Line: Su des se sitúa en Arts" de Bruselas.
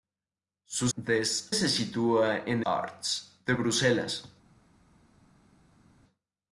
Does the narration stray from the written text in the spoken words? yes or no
no